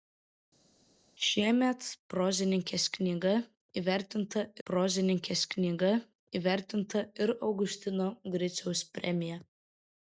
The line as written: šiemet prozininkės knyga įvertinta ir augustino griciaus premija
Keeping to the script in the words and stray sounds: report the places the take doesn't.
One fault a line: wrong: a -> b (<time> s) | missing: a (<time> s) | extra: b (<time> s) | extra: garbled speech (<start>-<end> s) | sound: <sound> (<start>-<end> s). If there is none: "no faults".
extra: prozininkės knyga įvertinta (4.7 s)